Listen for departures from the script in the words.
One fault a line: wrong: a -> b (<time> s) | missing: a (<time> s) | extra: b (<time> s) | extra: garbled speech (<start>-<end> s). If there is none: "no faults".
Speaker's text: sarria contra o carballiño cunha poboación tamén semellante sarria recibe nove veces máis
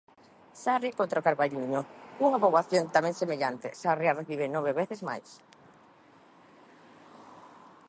no faults